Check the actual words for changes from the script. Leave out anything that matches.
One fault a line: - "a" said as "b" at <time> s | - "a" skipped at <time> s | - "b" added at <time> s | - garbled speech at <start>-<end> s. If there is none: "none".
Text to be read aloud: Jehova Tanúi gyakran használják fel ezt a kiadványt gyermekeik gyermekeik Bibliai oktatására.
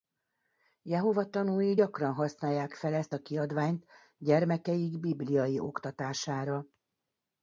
- "gyermekeik" skipped at 5.0 s